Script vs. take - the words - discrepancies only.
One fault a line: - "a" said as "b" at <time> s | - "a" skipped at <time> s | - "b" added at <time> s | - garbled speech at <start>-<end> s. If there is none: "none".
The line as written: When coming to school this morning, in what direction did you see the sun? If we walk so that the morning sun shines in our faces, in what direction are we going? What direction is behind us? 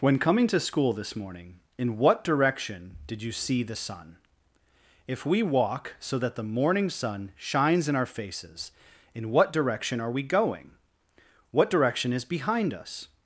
none